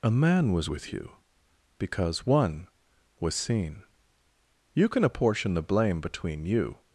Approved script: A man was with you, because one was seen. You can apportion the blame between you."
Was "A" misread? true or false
false